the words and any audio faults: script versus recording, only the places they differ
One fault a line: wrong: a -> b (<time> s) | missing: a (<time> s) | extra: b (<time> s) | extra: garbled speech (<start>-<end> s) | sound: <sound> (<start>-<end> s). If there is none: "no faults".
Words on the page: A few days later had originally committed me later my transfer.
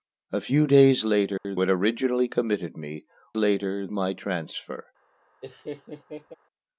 sound: dropout (1.4-1.4 s)
sound: laugh (5.4-6.3 s)